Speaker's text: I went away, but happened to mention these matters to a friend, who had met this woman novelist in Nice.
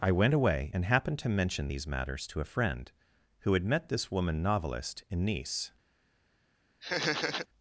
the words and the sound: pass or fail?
fail